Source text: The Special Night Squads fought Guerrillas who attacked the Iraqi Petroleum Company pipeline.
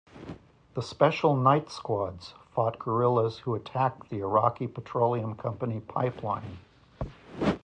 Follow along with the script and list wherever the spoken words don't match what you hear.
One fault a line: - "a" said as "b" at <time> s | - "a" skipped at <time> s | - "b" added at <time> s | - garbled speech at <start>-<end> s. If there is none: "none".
none